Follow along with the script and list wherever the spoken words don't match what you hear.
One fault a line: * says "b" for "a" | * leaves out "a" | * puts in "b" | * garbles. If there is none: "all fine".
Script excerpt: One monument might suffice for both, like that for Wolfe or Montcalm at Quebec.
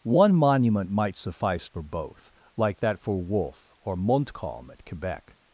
all fine